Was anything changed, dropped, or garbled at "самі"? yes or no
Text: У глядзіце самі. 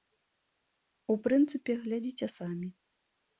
no